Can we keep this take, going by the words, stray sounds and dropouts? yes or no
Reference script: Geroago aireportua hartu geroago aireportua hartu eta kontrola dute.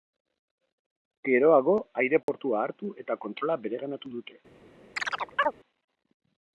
no